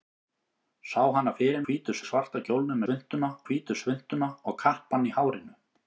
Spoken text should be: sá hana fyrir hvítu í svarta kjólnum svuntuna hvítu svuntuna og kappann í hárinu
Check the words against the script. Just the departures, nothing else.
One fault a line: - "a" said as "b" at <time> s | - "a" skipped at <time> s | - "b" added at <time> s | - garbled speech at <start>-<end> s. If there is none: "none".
none